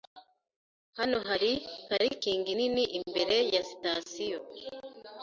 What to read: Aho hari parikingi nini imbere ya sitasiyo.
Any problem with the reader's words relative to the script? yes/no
yes